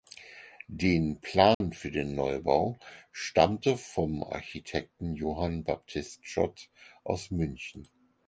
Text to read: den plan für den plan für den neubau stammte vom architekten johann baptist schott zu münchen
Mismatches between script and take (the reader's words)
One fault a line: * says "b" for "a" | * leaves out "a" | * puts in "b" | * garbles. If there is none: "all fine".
* leaves out "plan für den"
* says "aus" for "zu"